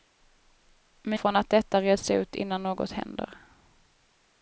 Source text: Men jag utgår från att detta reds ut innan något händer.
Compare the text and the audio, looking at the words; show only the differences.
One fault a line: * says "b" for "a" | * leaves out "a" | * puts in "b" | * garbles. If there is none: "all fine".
* leaves out "jag utgår"